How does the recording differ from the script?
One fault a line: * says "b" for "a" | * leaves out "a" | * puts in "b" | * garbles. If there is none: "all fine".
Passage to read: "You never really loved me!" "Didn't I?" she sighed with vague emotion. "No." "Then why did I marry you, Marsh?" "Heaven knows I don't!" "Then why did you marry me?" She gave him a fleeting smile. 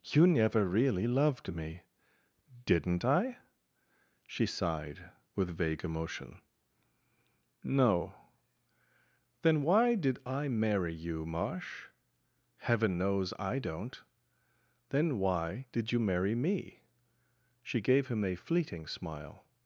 all fine